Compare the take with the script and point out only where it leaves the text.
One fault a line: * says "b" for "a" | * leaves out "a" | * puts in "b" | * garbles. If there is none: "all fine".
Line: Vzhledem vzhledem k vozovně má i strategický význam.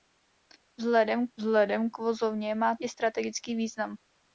all fine